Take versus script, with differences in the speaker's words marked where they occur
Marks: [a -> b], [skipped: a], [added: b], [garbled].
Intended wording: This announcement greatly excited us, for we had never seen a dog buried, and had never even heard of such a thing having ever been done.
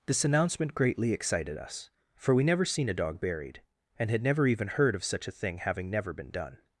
This announcement greatly excited us, for we [skipped: had] never seen a dog buried, and had never even heard of such a thing having [ever -> never] been done.